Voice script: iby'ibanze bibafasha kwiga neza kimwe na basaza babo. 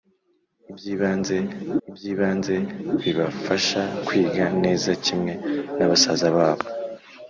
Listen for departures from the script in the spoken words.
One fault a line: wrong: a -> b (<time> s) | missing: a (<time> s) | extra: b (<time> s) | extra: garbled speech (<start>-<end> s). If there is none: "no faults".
extra: iby'ibanze (1.9 s)